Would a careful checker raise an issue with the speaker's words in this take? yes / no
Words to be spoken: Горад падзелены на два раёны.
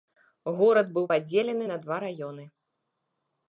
yes